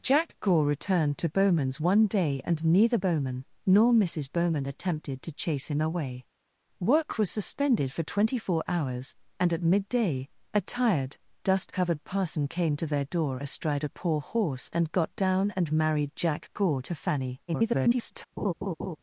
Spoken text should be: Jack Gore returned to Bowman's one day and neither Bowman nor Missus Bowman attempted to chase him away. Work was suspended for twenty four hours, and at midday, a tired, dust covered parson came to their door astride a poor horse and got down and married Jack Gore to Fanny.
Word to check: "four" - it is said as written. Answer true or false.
true